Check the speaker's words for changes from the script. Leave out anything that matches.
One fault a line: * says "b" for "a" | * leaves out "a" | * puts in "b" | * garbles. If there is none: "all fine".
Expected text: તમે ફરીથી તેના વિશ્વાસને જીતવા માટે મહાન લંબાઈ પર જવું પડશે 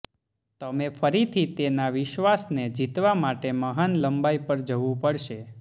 all fine